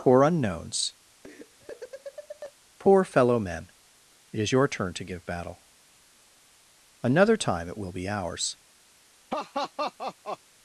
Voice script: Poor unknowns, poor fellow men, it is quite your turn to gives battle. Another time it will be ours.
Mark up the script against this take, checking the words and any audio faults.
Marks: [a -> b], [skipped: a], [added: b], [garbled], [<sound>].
Poor unknowns, [laugh] poor fellow men, it is [skipped: quite] your turn to [gives -> give] battle. Another time it will be ours. [laugh]